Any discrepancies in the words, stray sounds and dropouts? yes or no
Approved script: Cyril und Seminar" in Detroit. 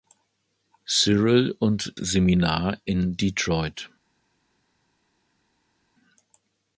no